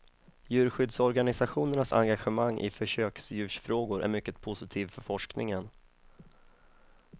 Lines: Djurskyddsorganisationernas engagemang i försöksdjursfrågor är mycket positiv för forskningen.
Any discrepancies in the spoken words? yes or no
no